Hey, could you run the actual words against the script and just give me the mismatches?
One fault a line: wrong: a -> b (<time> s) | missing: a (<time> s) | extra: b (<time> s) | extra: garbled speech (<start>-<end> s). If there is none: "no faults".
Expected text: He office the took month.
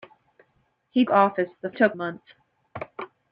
no faults